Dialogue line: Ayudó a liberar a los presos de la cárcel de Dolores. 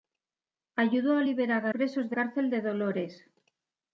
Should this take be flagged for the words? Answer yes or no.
yes